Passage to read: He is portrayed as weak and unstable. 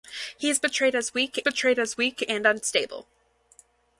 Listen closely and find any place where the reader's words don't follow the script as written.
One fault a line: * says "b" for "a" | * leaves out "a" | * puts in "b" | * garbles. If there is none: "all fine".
* puts in "portrayed as weak"